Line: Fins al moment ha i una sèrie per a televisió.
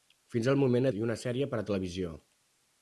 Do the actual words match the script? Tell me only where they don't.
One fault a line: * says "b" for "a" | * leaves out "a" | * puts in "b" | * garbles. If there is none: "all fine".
all fine